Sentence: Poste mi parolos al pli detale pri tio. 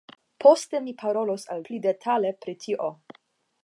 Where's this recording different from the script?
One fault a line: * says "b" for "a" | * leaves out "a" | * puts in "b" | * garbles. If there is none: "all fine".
all fine